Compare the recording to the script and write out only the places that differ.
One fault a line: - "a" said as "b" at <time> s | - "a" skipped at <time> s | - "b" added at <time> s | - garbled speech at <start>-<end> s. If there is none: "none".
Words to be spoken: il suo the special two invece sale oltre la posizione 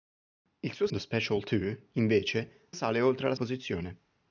none